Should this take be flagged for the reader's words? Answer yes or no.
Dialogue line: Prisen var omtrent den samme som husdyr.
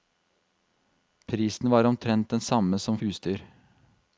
no